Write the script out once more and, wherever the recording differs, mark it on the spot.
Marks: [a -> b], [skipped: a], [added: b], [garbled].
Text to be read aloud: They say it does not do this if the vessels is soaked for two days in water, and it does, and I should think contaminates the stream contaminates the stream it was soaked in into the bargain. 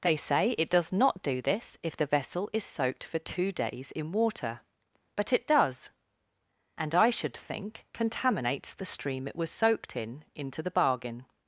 They say it does not do this if the [vessels -> vessel] is soaked for two days in water, [and -> but] it does, and I should think contaminates the stream [skipped: contaminates the stream] it was soaked in into the bargain.